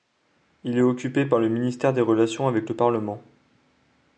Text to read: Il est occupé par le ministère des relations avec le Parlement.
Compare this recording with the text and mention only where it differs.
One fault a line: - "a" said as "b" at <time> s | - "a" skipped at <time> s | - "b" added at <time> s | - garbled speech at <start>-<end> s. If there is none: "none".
none